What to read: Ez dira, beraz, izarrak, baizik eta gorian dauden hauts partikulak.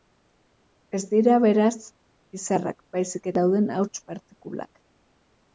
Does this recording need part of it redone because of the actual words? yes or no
yes